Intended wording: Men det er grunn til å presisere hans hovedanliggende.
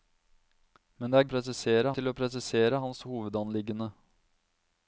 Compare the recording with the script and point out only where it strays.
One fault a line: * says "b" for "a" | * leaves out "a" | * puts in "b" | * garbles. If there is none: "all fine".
* says "presisere" for "grunn"